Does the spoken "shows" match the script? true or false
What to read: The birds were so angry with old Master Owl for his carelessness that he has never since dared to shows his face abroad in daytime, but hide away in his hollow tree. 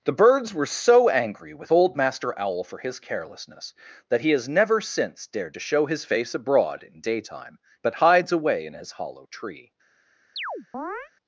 false